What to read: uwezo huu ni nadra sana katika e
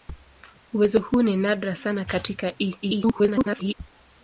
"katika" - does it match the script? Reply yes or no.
yes